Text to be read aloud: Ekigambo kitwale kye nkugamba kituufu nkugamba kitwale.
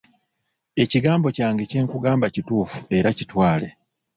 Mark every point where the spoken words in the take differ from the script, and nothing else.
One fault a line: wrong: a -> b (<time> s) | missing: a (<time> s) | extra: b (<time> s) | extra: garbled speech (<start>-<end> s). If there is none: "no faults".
wrong: kitwale -> kyange (1.4 s)
wrong: nkugamba -> era (3.0 s)